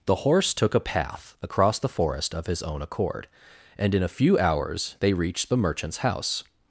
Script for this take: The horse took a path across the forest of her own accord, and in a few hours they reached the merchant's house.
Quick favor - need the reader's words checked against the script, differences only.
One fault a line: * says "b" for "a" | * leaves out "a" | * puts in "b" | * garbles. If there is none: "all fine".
* says "his" for "her"